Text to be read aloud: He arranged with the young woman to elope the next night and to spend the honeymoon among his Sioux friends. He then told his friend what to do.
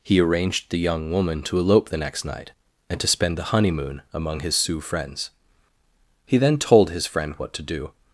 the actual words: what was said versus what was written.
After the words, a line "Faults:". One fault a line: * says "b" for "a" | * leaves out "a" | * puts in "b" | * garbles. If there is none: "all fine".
He arranged the young woman to elope the next night and to spend the honeymoon among his Sioux friends. He then told his friend what to do.
Faults:
* leaves out "with"